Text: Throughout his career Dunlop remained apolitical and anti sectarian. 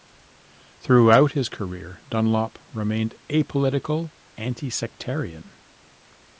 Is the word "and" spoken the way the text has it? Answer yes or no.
no